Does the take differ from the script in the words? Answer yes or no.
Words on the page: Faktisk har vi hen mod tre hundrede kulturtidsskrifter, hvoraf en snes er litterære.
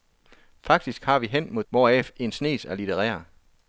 yes